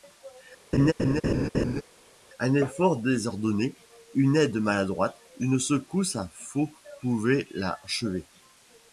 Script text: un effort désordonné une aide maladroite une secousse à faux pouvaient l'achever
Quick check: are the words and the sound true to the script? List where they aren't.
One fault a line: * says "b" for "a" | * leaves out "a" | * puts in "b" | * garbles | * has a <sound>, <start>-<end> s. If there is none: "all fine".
* has a laugh, 0.7-1.8 s